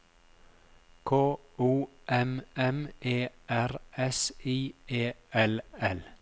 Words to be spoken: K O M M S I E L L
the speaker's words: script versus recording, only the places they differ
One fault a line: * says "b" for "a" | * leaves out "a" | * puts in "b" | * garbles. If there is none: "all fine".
* puts in "E R"